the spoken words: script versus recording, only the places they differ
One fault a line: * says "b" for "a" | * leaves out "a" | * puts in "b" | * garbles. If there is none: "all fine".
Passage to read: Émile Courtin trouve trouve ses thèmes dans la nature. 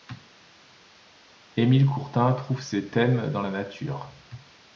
* leaves out "trouve"